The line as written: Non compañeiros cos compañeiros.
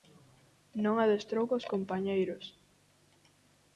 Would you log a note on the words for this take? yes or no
yes